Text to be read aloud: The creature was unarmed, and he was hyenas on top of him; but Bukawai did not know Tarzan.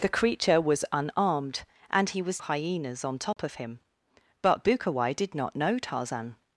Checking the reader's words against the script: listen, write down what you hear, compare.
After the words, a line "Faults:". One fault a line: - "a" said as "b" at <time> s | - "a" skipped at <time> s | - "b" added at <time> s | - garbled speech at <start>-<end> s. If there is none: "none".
The creature was unarmed, and he was hyenas on top of him; but Bukawai did not know Tarzan.
Faults:
none